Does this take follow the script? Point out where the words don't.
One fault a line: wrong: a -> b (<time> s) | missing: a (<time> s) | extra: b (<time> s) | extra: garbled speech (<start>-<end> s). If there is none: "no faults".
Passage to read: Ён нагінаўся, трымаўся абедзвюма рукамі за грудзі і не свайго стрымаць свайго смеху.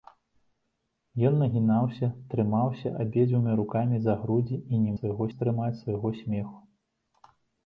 no faults